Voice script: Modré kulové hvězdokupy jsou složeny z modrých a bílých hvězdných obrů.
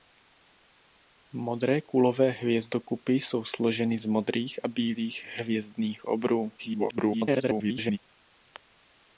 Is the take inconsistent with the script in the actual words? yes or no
yes